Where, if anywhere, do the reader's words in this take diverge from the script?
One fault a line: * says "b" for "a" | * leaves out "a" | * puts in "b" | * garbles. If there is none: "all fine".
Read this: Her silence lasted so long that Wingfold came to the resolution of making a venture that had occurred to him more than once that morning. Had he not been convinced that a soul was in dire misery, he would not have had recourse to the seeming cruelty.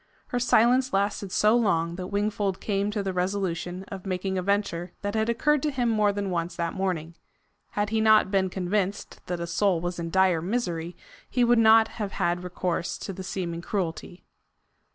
all fine